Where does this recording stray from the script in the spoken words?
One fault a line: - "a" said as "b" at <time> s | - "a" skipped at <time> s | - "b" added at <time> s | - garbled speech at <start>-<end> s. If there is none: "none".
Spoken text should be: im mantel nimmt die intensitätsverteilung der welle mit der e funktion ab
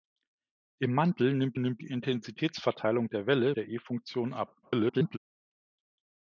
- "nimmt" added at 1.6 s
- "mit" skipped at 3.5 s
- garbled speech at 4.6-5.2 s